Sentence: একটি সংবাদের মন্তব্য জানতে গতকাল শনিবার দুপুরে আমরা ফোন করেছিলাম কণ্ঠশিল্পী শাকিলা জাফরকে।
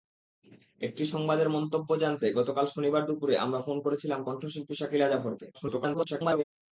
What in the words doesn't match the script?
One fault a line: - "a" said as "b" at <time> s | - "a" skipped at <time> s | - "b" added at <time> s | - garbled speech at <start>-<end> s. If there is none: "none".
- garbled speech at 5.5-6.4 s